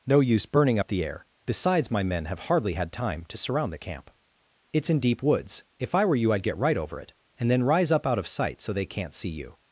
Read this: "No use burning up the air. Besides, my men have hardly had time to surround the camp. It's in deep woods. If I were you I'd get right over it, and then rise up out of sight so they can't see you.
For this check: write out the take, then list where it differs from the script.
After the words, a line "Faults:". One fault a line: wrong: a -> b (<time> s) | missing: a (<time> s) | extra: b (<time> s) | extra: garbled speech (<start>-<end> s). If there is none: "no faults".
"No use burning up the air. Besides, my men have hardly had time to surround the camp. It's in deep woods. If I were you I'd get right over it, and then rise up out of sight so they can't see you.
Faults:
no faults